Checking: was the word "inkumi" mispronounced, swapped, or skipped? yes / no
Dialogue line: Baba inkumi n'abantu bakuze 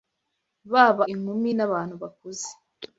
no